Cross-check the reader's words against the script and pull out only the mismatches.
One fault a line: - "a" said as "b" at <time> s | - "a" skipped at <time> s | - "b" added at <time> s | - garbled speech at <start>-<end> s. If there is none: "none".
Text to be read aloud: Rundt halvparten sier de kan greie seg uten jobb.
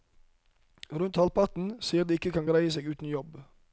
- "ikke" added at 2.2 s